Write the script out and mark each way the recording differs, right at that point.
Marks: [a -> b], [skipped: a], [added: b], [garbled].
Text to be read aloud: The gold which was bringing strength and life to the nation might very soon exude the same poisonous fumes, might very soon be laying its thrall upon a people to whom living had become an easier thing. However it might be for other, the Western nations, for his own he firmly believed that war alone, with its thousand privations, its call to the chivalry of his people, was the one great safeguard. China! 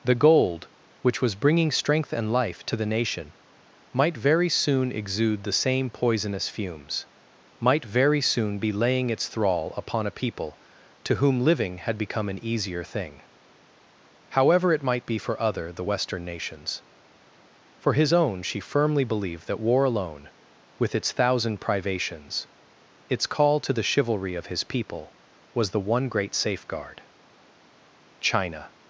The gold which was bringing strength and life to the nation might very soon exude the same poisonous fumes, might very soon be laying its thrall upon a people to whom living had become an easier thing. However it might be for other, the Western nations, for his own [he -> she] firmly believed that war alone, with its thousand privations, its call to the chivalry of his people, was the one great safeguard. China!